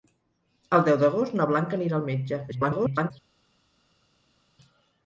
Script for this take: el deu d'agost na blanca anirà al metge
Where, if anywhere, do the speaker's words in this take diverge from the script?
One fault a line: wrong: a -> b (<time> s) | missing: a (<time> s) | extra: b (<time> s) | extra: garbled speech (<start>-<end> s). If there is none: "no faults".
extra: garbled speech (2.5-3.1 s)